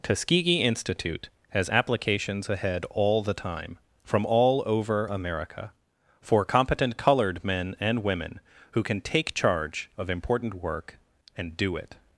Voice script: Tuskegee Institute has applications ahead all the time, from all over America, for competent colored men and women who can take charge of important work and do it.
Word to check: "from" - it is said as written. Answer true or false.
true